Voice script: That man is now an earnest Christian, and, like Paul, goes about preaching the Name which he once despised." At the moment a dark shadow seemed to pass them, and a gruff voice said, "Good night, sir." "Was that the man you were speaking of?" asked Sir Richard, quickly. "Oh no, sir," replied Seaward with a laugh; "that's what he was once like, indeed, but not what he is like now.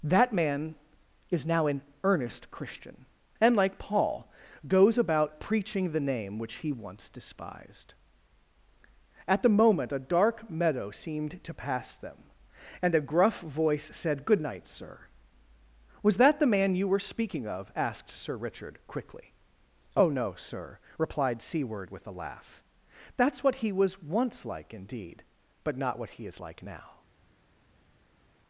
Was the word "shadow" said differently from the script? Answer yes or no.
yes